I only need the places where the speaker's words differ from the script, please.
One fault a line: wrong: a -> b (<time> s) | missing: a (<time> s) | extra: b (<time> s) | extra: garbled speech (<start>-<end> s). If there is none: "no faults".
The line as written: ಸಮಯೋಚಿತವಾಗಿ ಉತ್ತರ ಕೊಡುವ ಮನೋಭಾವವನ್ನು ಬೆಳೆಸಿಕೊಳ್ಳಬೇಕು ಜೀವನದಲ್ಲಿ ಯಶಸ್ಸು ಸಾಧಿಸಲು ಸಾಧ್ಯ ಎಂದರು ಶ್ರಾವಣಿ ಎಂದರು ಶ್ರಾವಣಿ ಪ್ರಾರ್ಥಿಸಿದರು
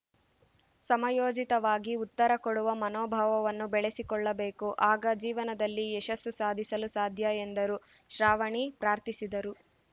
extra: ಆಗ (4.9 s)
missing: ಎಂದರು ಶ್ರಾವಣಿ (8.7 s)